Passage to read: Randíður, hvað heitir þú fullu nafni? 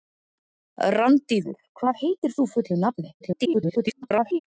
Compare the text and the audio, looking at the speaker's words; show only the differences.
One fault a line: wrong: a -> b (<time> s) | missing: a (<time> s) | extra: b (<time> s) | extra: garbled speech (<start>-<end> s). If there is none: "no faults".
extra: garbled speech (3.2-4.4 s)